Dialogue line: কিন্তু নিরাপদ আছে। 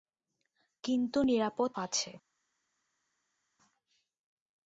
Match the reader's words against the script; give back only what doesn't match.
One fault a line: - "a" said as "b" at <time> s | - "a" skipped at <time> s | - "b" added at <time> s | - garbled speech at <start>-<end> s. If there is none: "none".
none